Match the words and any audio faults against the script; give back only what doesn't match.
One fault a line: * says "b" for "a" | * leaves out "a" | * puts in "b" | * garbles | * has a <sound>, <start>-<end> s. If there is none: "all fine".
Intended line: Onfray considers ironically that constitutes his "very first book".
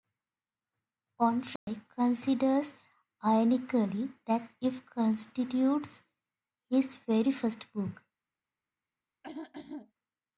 * has a dropout, 1.6-1.7 s
* puts in "it"
* has a throat clearing, 9.2-9.9 s